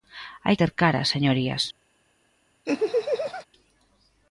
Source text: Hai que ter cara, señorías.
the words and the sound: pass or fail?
fail